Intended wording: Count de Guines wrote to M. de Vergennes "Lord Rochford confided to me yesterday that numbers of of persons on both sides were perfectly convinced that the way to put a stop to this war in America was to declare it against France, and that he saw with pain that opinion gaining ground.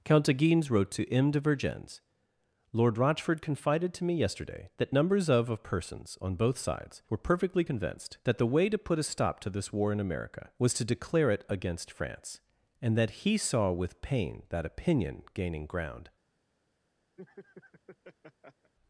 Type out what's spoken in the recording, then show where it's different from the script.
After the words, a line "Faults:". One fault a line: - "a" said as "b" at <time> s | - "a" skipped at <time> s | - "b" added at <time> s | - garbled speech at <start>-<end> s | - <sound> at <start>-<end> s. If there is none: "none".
Count de Guines wrote to M. de Vergennes "Lord Rochford confided to me yesterday that numbers of of persons on both sides were perfectly convinced that the way to put a stop to this war in America was to declare it against France, and that he saw with pain that opinion gaining ground.
Faults:
- laugh at 17.2-18.7 s